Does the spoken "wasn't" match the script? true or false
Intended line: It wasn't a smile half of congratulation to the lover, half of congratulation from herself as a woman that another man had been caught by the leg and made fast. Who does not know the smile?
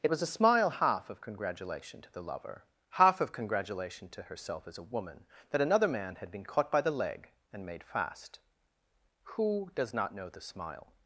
false